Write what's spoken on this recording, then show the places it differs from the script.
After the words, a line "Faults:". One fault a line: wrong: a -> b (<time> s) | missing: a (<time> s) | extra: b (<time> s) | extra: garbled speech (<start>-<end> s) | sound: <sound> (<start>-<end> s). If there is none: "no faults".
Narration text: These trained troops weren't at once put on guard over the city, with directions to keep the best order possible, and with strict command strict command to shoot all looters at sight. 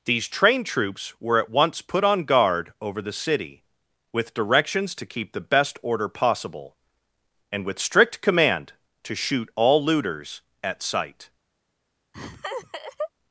These trained troops were at once put on guard over the city, with directions to keep the best order possible, and with strict command to shoot all looters at sight.
Faults:
wrong: weren't -> were (1.2 s)
missing: strict command (8.7 s)
sound: laugh (12.1-13.1 s)